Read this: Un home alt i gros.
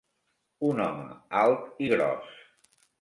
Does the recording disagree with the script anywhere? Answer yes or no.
no